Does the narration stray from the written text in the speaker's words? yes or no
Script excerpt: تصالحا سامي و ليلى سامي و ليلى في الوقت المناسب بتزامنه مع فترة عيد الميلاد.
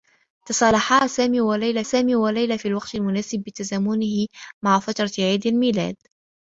no